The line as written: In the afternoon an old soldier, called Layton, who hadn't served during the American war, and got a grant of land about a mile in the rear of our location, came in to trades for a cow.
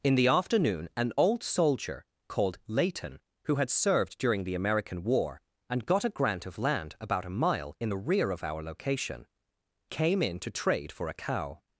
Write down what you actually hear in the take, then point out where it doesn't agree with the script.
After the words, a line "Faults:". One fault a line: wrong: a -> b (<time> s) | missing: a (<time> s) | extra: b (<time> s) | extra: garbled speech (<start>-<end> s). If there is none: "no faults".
In the afternoon an old soldier, called Layton, who had served during the American war, and got a grant of land about a mile in the rear of our location, came in to trade for a cow.
Faults:
wrong: hadn't -> had (3.6 s)
wrong: trades -> trade (10.5 s)